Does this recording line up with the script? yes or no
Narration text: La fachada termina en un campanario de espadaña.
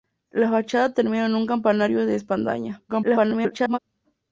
no